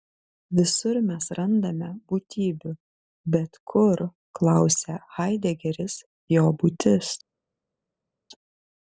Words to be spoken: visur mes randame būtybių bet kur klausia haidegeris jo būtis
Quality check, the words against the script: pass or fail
pass